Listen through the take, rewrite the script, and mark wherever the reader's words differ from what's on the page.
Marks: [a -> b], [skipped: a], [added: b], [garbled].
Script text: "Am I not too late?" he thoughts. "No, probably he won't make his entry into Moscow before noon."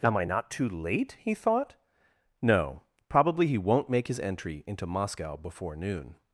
"Am I not too late?" he [thoughts. -> thought] "No, probably he won't make his entry into Moscow before noon."